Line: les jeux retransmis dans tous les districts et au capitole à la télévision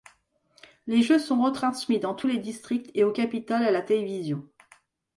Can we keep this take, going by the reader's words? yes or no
no